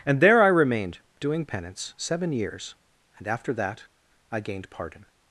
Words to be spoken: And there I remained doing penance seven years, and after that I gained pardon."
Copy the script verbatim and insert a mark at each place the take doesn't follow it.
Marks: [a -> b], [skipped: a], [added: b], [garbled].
And there I remained doing penance seven years, and after that I gained pardon."